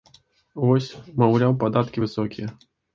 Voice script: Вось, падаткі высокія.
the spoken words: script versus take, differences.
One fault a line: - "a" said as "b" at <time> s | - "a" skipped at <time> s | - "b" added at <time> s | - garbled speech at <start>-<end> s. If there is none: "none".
- "маўляў" added at 1.3 s